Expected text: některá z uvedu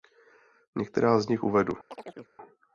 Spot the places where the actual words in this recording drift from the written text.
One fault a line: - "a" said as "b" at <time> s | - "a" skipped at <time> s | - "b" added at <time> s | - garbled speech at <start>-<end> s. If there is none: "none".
- "nich" added at 1.3 s